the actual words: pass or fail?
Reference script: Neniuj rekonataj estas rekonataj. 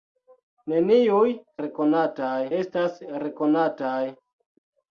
pass